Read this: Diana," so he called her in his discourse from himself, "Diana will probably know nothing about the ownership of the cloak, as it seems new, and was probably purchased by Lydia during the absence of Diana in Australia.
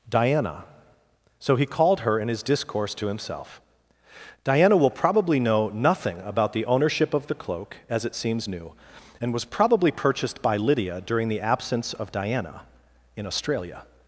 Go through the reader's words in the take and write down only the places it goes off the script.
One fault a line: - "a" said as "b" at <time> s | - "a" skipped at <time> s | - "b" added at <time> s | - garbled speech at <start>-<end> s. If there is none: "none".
- "from" said as "to" at 3.0 s